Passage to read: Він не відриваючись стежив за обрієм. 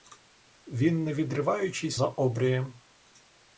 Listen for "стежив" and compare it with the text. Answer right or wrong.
wrong